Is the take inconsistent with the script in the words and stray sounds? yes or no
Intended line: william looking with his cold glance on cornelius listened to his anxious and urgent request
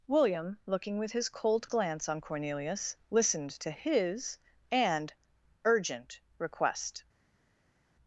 yes